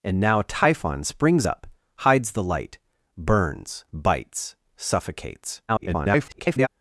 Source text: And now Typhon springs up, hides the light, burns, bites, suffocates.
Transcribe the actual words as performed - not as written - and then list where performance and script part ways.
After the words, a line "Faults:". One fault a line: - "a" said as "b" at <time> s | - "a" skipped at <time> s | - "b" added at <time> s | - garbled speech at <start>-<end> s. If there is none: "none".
And now Typhon springs up, hides the light, burns, bites, suffocates. [garbled]
Faults:
- garbled speech at 5.7-6.7 s